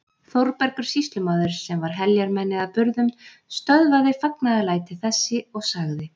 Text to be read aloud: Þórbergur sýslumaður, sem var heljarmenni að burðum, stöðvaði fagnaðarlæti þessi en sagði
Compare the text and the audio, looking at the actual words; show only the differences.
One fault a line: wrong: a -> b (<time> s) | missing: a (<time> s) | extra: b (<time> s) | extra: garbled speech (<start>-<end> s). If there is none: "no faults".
wrong: en -> og (5.5 s)